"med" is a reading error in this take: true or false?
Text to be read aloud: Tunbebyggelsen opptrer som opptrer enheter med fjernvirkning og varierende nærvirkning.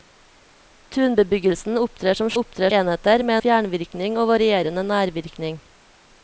false